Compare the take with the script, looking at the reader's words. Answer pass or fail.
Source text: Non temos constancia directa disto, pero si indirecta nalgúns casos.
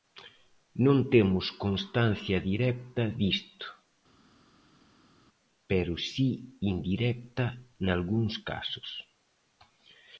pass